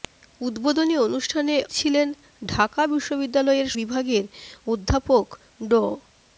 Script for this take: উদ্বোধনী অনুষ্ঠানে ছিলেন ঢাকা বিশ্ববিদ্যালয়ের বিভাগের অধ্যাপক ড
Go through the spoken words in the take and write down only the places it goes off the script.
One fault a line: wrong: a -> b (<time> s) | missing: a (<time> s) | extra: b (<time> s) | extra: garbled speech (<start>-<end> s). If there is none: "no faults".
no faults